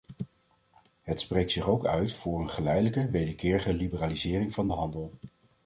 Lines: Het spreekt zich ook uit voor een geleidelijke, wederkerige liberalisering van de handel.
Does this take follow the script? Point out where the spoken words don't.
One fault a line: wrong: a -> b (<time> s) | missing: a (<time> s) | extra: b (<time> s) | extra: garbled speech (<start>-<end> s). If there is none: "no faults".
no faults